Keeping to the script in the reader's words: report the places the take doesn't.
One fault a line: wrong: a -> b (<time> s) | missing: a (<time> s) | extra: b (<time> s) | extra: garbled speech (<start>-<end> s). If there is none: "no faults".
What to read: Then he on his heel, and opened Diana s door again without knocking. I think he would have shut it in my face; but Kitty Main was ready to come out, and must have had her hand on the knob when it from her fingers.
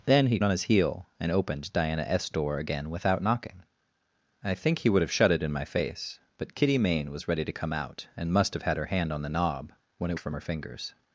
no faults